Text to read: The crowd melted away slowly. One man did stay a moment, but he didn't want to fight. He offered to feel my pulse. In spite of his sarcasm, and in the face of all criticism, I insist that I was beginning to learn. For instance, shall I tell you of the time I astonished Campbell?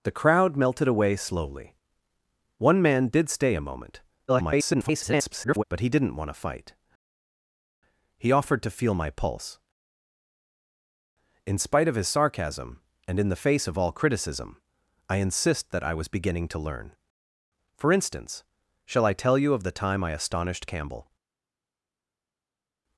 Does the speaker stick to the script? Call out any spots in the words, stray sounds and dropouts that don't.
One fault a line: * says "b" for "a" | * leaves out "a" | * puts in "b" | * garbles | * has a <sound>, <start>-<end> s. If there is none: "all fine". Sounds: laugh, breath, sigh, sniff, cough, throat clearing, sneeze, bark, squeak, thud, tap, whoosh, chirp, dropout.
* garbles